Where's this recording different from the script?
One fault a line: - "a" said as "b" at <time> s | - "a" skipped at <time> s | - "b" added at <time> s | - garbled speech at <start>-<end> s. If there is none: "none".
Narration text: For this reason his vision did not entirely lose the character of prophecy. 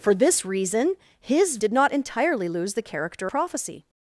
- "vision" skipped at 1.6 s
- "of" skipped at 3.3 s